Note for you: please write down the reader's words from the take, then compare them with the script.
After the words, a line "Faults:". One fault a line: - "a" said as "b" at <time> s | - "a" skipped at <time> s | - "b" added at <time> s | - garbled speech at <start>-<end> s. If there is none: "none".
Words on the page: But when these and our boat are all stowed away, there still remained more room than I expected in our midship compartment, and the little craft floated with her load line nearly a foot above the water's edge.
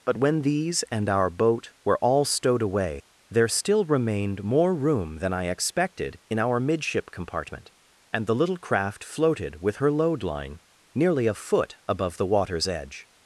But when these and our boat were all stowed away, there still remained more room than I expected in our midship compartment, and the little craft floated with her load line nearly a foot above the water's edge.
Faults:
- "are" said as "were" at 1.9 s